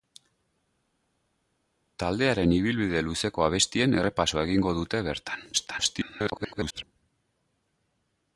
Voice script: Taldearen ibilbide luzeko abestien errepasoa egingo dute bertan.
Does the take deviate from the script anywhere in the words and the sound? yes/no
yes